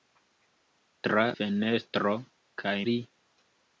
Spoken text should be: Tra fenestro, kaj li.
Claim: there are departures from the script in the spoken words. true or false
false